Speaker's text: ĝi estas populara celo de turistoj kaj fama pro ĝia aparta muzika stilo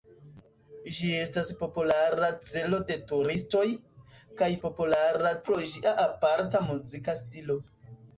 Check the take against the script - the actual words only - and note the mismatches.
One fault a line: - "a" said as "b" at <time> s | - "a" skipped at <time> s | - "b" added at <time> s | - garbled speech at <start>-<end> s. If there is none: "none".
- "fama" said as "populara" at 4.6 s